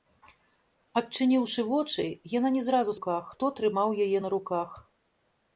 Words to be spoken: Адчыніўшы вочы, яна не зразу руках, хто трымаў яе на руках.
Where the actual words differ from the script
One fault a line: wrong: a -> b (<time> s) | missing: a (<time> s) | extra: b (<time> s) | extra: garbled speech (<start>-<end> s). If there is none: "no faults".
no faults